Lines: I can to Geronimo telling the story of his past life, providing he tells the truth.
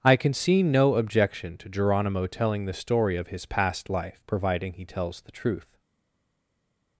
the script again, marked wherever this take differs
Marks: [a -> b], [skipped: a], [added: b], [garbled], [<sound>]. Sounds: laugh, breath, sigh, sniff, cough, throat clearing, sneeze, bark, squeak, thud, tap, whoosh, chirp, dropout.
I can [added: see no objection] to Geronimo telling the story of his past life, providing he tells the truth.